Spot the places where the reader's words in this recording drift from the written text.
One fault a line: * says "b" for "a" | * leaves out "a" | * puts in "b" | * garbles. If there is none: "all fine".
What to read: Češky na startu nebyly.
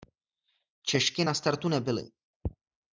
all fine